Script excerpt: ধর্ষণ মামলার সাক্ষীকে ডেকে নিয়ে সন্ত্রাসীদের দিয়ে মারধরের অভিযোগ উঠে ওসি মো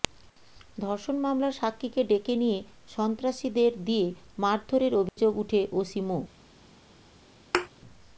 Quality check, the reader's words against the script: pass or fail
pass